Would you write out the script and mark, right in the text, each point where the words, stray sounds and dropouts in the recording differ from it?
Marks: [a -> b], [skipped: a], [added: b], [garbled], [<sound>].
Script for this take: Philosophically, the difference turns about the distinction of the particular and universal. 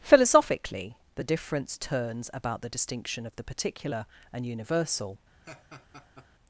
Philosophically, the difference turns about the distinction of the particular and universal. [laugh]